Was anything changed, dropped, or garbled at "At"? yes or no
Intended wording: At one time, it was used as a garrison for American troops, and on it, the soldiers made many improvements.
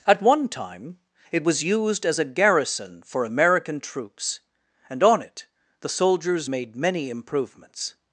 no